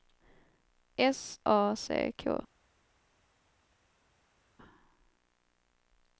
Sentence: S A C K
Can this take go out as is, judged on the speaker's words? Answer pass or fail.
pass